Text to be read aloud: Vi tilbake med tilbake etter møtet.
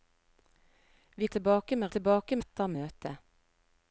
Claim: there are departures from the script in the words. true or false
false